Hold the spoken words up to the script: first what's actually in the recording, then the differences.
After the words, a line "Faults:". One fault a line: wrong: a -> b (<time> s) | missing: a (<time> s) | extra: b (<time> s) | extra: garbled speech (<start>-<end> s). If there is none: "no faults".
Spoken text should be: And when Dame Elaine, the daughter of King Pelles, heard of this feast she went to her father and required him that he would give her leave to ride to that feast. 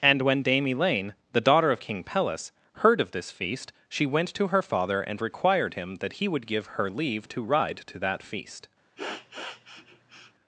And when Dame Elaine, the daughter of King Pelles, heard of this feast she went to her father and required him that he would give her leave to ride to that feast.
Faults:
no faults